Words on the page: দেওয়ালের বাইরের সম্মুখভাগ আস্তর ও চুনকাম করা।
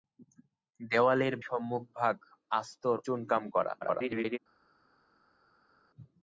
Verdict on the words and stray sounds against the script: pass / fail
fail